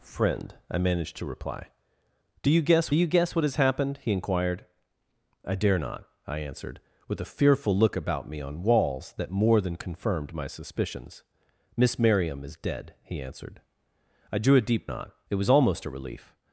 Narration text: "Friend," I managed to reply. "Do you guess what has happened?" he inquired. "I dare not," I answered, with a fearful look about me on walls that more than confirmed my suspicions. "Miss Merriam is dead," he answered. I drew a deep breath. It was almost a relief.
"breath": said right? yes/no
no